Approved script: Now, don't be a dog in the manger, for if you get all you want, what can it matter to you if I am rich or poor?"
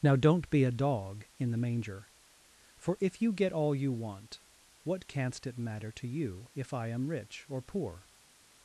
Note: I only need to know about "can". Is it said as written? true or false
false